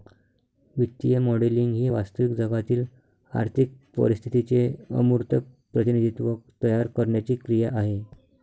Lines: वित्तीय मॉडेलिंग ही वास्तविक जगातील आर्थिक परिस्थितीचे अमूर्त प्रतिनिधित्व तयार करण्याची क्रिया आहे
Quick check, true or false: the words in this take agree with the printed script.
true